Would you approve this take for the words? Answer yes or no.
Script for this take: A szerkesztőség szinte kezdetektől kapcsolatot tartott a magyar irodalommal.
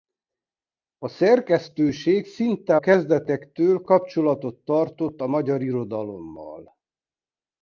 yes